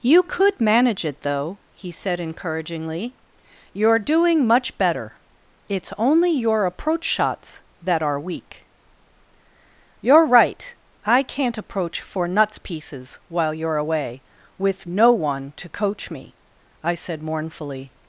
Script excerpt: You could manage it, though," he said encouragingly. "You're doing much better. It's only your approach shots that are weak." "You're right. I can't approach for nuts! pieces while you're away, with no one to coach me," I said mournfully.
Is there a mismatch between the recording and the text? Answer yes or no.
no